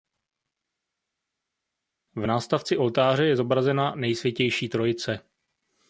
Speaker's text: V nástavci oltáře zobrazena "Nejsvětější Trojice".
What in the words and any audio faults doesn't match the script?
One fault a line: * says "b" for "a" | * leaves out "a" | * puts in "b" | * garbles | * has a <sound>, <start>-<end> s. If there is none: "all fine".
* puts in "je"